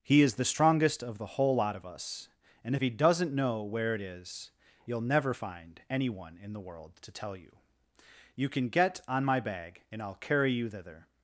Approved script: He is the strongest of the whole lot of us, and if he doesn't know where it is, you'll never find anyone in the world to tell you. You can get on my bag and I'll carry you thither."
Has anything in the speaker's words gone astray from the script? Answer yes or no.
no